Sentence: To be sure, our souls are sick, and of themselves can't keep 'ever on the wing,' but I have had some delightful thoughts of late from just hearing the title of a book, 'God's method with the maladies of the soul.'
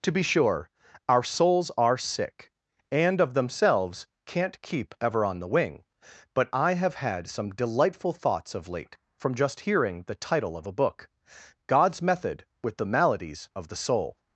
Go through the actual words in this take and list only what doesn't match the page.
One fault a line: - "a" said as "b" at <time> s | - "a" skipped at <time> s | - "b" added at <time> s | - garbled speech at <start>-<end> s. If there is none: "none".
none